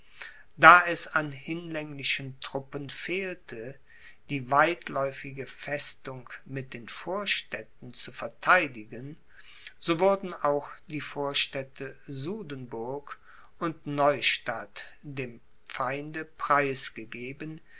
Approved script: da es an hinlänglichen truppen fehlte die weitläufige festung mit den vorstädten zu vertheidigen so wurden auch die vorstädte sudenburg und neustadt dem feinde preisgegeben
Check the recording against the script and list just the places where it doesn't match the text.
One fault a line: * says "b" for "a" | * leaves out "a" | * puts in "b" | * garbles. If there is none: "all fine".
all fine